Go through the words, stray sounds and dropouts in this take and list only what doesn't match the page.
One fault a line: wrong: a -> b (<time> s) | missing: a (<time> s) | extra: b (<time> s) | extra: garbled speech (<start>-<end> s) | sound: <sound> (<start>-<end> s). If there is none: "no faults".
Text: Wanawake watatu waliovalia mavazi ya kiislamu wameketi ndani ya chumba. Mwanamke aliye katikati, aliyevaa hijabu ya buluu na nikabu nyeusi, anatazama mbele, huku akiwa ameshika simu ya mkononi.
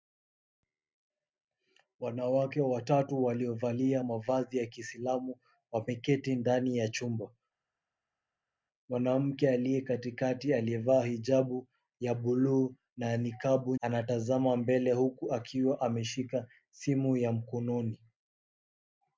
missing: nyeusi (13.8 s)